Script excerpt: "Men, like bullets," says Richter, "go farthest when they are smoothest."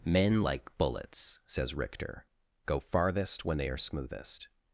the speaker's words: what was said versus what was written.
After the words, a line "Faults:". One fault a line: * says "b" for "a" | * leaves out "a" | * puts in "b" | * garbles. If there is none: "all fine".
"Men, like bullets," says Richter, "go farthest when they are smoothest."
Faults:
all fine